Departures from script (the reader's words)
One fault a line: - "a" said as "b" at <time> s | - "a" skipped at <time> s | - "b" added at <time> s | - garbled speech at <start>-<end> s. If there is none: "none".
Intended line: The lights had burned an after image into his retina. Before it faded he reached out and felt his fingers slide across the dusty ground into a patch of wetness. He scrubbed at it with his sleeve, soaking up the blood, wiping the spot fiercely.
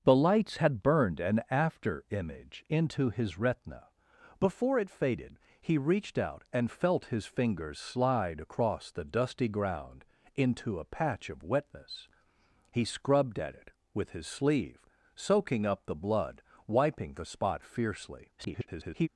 - garbled speech at 18.4-19.1 s